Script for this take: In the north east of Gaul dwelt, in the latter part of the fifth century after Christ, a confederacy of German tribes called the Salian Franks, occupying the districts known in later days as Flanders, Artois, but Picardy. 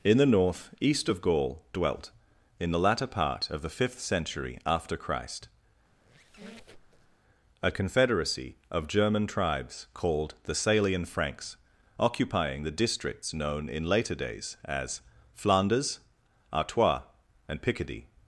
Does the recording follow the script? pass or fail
fail